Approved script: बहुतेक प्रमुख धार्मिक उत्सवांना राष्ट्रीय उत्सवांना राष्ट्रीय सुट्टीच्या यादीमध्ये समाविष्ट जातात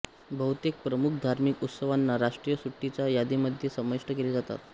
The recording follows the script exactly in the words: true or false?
false